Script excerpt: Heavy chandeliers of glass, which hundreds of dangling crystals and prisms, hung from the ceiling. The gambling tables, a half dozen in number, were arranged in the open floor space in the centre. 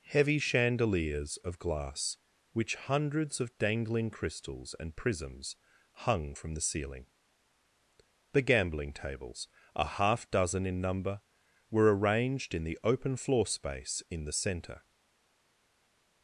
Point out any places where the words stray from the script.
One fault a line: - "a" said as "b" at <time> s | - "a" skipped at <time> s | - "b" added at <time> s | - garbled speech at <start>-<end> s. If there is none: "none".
none